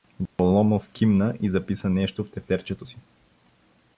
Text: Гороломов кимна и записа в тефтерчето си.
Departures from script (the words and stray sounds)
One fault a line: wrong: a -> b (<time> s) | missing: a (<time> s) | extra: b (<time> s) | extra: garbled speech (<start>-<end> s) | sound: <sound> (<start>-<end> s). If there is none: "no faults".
sound: dropout (0.3-0.4 s)
extra: нещо (1.9 s)